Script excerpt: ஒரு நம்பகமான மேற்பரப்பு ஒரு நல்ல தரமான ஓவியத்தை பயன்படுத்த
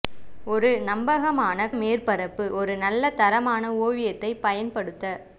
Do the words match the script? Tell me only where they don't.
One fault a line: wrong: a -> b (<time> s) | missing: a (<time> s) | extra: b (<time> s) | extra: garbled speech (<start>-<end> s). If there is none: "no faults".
no faults